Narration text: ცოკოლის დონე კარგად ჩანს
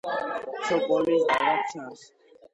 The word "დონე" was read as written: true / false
false